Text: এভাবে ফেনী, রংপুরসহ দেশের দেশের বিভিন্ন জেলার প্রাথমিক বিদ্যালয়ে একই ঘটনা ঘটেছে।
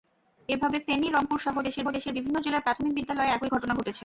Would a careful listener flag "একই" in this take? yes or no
no